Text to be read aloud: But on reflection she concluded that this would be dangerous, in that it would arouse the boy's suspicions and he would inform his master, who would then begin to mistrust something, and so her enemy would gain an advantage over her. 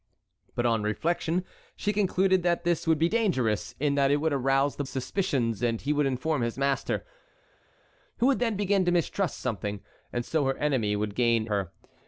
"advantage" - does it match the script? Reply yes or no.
no